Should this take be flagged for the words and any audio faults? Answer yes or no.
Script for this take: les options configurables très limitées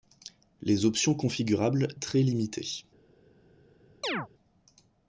yes